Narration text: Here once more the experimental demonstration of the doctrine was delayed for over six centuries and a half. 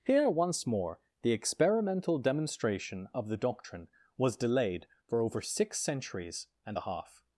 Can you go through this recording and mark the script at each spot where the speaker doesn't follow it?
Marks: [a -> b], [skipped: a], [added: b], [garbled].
Here once more the experimental demonstration of the doctrine was delayed for over six centuries and a half.